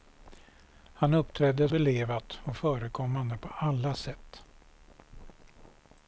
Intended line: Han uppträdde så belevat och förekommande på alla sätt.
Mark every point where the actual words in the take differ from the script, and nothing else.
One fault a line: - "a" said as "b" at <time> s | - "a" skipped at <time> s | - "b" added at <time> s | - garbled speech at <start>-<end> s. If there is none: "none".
- "så" skipped at 1.7 s